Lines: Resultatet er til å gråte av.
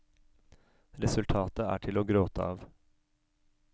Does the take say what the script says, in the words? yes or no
yes